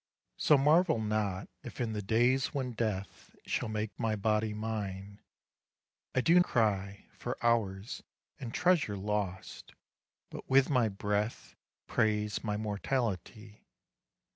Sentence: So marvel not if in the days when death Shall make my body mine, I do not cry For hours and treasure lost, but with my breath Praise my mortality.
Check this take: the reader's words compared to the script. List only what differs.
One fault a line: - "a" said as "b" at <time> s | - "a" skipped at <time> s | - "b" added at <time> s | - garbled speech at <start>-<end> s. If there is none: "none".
- "not" skipped at 6.4 s